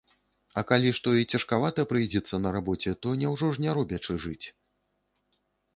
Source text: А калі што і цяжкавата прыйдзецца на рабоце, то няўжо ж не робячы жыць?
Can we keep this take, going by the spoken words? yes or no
yes